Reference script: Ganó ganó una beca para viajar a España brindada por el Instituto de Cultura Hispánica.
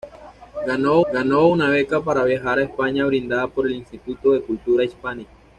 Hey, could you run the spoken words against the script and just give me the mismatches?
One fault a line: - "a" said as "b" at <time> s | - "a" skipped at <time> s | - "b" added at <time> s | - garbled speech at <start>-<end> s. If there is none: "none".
none